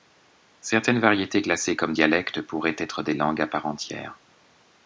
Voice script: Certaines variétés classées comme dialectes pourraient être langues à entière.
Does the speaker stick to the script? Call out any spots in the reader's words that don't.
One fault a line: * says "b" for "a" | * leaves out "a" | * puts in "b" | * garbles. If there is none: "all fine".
* puts in "des"
* puts in "part"